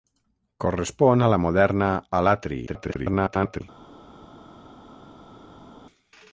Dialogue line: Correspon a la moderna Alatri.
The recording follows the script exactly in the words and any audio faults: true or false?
false